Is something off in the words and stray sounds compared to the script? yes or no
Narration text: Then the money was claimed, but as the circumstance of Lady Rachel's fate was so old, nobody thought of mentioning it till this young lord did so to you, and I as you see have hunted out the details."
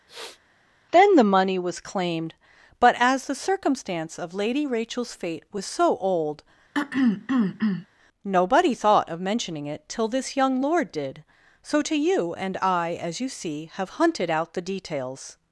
yes